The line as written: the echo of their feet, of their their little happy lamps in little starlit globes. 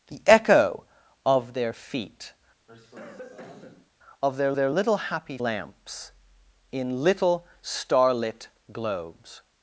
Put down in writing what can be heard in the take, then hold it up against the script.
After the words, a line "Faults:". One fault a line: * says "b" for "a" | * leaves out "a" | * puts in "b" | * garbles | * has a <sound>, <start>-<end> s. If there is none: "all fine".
the echo of their feet, of their their little happy lamps in little starlit globes.
Faults:
* has a cough, 2.7-3.9 s